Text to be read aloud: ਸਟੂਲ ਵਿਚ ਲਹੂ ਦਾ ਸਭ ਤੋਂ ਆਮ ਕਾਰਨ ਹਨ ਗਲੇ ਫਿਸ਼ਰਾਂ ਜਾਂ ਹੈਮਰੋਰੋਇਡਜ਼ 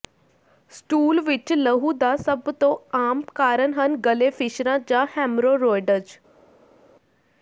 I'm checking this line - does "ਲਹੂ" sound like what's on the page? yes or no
yes